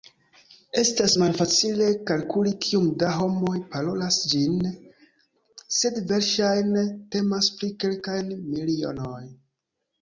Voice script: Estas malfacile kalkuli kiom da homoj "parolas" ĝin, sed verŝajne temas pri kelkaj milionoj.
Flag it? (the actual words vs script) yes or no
no